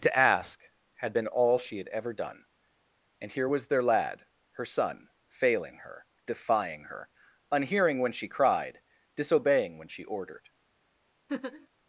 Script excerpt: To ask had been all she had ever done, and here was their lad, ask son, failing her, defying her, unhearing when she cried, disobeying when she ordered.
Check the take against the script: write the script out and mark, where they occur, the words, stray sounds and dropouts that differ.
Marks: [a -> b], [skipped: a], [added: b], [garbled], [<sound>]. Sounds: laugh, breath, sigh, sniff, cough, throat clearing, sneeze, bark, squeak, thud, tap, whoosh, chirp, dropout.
To ask had been all she had ever done, and here was their lad, [ask -> her] son, failing her, defying her, unhearing when she cried, disobeying when she ordered. [laugh]